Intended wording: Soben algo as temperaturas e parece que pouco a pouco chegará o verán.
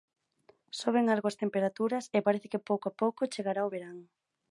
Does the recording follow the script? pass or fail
pass